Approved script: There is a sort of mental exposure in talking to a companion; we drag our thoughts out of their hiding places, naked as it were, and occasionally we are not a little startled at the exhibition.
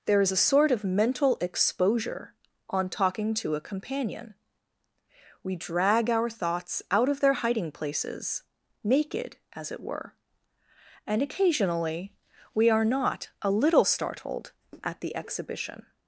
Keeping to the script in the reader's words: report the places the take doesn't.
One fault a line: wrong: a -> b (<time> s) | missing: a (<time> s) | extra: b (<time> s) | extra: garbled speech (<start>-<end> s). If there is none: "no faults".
wrong: in -> on (2.7 s)